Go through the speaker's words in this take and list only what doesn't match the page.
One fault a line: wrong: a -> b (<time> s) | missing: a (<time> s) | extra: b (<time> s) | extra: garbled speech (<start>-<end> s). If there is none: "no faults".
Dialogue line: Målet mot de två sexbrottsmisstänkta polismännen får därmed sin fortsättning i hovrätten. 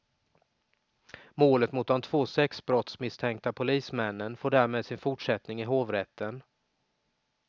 no faults